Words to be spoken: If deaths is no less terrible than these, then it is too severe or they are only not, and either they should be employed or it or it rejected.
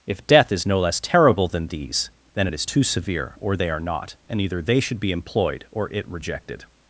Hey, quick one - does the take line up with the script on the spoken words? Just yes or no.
no